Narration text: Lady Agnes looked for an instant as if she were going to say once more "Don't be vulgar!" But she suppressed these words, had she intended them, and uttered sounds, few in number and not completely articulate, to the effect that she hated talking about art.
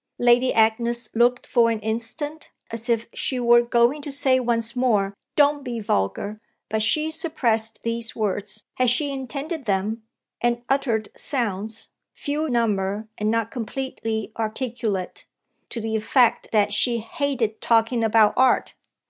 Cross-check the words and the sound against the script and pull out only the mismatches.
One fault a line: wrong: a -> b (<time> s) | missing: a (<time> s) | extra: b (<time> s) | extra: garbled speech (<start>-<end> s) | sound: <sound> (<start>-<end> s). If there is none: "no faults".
missing: in (12.5 s)